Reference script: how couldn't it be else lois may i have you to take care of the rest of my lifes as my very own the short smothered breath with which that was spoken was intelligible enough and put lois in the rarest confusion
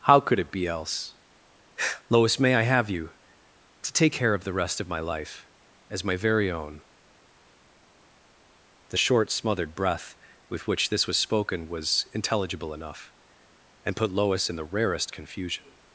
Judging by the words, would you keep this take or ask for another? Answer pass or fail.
fail